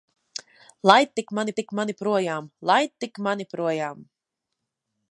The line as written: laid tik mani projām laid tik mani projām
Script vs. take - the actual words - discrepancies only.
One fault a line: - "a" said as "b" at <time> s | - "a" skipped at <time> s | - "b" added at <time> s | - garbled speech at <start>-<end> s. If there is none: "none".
- "tik mani" added at 1.6 s